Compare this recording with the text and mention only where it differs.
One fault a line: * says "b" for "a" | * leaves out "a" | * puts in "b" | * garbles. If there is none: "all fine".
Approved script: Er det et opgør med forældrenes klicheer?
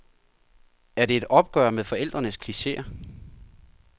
all fine